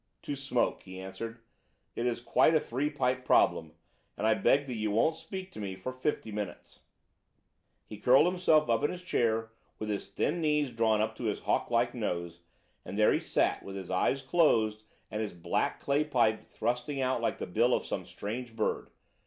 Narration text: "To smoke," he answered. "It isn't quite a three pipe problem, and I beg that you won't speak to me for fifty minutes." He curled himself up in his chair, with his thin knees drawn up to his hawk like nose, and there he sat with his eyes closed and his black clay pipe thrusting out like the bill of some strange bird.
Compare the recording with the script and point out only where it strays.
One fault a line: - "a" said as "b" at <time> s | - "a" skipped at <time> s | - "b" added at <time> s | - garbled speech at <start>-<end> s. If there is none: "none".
- "isn't" said as "is" at 2.1 s